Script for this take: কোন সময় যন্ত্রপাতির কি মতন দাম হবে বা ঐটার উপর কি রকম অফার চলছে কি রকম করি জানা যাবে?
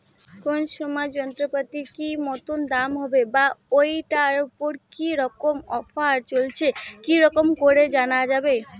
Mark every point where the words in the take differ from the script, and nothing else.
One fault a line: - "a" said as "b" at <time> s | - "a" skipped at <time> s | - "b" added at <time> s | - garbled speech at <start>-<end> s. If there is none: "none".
none